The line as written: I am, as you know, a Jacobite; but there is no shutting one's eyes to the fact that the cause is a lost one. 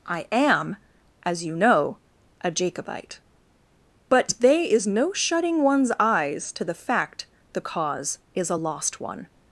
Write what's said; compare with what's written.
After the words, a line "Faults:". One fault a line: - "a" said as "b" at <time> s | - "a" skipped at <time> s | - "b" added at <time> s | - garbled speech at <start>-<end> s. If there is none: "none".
I am, as you know, a Jacobite; but they is no shutting one's eyes to the fact the cause is a lost one.
Faults:
- "there" said as "they" at 4.4 s
- "that" skipped at 7.3 s